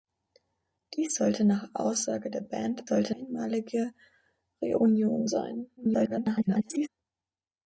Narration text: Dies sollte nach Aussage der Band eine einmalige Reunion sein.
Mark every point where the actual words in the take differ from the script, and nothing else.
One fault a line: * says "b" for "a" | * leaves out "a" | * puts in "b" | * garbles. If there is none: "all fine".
* says "sollte" for "eine"
* garbles